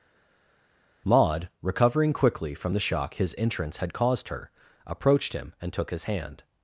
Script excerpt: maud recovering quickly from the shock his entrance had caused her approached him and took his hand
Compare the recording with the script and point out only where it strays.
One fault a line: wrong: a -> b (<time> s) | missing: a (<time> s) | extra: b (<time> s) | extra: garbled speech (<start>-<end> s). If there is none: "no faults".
no faults